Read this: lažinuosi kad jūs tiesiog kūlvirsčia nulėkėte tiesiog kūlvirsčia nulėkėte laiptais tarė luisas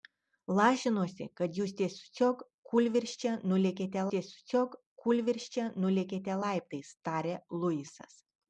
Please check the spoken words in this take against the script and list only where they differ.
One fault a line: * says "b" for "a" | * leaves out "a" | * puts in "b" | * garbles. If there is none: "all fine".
all fine